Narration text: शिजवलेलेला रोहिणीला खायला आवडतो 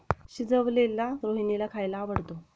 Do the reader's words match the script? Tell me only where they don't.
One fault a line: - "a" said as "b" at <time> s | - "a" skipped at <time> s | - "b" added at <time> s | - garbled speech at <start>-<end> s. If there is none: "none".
none